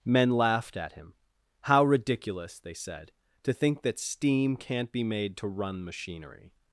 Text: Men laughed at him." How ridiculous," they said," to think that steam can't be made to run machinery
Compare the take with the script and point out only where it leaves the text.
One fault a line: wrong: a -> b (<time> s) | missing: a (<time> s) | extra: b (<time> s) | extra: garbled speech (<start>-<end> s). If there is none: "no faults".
no faults